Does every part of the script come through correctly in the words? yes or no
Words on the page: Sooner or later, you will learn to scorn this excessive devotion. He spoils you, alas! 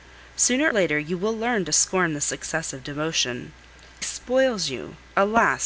no